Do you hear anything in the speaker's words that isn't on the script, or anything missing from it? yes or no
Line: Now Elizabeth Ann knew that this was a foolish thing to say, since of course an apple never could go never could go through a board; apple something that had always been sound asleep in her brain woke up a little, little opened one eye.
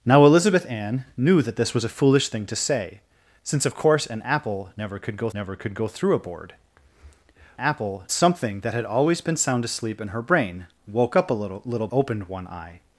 no